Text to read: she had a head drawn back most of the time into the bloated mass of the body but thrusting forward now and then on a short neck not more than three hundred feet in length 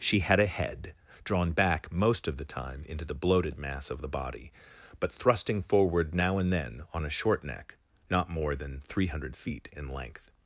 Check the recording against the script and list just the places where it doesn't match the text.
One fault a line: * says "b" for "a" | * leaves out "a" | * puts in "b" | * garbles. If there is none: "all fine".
all fine